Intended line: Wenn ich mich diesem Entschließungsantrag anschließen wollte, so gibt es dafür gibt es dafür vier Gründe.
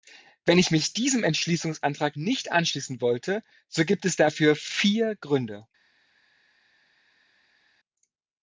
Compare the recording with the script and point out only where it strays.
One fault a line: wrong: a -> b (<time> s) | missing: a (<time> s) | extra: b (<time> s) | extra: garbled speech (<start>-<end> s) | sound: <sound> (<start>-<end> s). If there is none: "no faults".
extra: nicht (2.1 s)
missing: gibt es dafür (4.5 s)